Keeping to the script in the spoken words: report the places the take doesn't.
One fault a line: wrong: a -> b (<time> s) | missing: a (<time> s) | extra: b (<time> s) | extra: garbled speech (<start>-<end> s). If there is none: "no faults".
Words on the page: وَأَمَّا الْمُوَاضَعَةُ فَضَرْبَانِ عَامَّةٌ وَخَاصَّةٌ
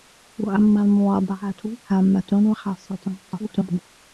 missing: فَضَرْبَانِ (1.8 s)
extra: garbled speech (3.3-3.8 s)